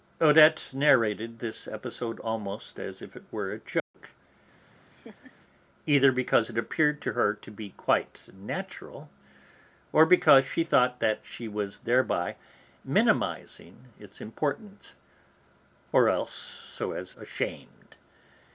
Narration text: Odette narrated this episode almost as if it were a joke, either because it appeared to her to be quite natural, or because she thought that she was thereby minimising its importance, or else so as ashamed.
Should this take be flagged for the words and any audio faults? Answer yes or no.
yes